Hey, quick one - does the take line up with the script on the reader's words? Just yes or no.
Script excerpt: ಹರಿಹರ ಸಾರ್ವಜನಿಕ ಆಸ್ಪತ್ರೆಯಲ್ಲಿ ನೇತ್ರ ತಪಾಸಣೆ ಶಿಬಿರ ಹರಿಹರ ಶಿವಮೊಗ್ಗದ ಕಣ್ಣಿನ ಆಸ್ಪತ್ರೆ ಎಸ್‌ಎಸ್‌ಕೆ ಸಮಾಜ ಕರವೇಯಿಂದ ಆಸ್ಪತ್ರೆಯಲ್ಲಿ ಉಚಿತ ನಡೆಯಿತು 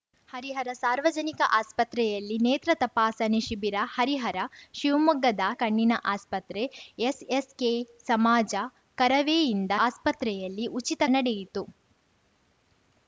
yes